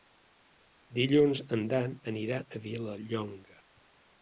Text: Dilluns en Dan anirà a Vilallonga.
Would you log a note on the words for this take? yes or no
no